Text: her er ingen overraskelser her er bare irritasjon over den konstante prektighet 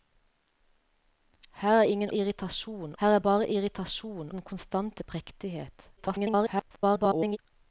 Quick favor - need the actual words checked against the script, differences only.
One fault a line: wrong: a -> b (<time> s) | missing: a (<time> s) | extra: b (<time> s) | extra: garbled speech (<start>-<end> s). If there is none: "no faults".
wrong: overraskelser -> irritasjon (2.1 s)
missing: over (4.3 s)
extra: garbled speech (6.0-7.4 s)